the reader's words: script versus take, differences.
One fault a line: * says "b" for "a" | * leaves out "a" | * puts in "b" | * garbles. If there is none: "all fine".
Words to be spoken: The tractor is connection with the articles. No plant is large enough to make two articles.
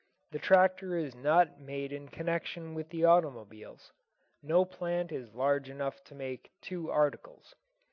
* puts in "not made in"
* says "automobiles" for "articles"